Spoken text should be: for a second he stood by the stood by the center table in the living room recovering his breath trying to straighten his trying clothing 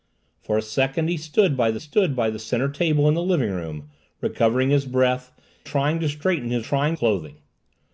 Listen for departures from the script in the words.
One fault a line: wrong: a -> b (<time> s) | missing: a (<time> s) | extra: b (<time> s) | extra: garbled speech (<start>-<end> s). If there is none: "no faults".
no faults